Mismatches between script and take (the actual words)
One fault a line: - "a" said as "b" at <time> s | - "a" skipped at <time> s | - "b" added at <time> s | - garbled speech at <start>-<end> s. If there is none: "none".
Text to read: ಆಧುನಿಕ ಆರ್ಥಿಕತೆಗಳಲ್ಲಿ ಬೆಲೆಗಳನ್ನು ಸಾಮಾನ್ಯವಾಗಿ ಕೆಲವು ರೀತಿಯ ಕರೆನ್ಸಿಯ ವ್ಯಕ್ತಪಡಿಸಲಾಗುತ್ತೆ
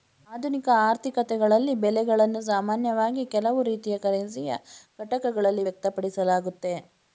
- "ಘಟಕಗಳಲ್ಲಿ" added at 5.0 s